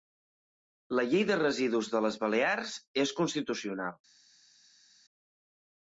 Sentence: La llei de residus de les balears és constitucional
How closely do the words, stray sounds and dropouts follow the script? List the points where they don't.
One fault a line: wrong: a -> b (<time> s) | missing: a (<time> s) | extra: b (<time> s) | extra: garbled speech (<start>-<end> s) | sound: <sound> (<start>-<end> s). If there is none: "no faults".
no faults